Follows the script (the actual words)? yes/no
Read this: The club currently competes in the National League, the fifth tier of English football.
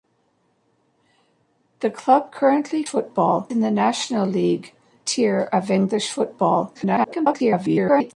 no